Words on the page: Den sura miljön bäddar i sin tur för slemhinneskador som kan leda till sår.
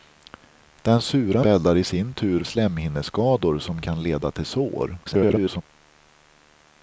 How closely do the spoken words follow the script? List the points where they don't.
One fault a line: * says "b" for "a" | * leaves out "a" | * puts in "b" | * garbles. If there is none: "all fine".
* leaves out "miljön"
* leaves out "för"
* garbles